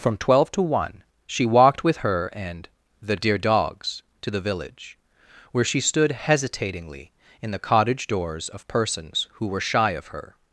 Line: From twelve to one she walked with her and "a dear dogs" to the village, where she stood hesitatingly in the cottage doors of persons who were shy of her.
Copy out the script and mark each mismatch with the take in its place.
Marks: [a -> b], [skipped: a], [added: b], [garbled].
From twelve to one she walked with her and ["a -> the] dear dogs" to the village, where she stood hesitatingly in the cottage doors of persons who were shy of her.